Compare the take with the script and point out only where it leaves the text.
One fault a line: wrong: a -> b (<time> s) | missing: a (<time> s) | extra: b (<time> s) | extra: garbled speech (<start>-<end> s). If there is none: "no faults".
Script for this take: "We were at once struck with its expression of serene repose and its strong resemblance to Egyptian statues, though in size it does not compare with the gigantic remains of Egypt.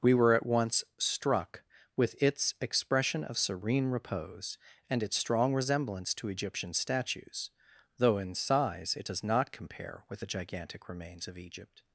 no faults